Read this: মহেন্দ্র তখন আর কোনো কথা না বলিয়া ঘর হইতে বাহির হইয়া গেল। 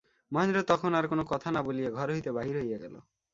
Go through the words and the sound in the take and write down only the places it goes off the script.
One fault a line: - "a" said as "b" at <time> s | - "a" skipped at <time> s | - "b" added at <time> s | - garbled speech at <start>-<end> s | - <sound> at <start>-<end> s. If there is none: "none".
none